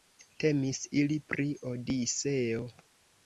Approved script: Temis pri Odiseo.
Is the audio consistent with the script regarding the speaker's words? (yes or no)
no